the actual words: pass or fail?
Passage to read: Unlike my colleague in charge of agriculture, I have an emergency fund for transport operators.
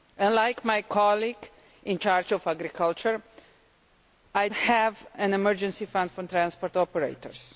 pass